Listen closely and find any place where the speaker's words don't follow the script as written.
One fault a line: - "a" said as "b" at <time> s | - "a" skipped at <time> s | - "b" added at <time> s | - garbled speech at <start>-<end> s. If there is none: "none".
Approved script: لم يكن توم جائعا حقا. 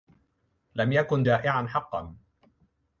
- "توم" skipped at 1.3 s